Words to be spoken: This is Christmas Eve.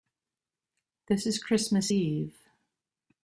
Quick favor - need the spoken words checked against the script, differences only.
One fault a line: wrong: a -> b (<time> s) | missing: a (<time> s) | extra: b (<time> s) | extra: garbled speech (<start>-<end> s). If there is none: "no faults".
no faults